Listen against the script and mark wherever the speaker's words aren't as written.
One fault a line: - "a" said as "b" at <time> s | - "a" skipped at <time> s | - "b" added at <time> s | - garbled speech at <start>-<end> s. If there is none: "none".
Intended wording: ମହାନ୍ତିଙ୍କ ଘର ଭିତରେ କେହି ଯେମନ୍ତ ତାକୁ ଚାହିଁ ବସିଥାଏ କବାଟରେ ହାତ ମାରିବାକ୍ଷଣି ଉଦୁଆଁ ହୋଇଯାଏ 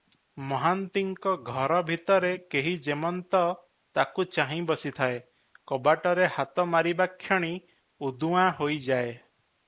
none